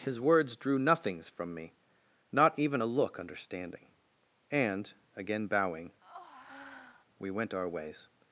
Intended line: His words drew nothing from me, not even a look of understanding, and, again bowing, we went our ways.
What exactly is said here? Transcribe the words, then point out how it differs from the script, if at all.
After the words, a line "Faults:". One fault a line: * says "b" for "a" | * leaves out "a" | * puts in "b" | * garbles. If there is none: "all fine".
His words drew nothings from me, not even a look understanding, and, again bowing, we went our ways.
Faults:
* says "nothings" for "nothing"
* leaves out "of"